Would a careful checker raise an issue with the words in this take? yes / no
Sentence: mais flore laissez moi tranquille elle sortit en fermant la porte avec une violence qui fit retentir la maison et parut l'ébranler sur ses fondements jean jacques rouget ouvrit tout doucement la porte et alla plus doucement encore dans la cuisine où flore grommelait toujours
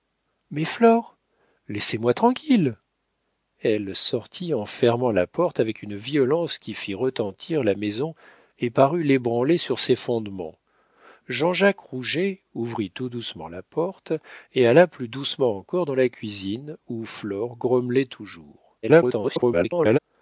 yes